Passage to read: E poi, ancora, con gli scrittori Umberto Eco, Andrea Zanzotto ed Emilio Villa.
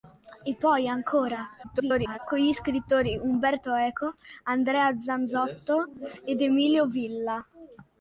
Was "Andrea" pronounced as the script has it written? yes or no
yes